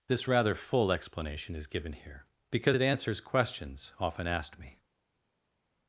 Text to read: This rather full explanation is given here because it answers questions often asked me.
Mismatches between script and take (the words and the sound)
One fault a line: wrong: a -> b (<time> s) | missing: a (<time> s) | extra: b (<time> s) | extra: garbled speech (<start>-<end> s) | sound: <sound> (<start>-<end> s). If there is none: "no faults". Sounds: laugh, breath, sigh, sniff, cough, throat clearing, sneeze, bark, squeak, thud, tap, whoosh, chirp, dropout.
no faults